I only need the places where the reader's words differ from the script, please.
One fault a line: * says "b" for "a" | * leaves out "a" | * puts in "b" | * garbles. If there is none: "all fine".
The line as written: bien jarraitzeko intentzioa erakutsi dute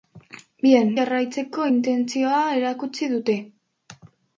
all fine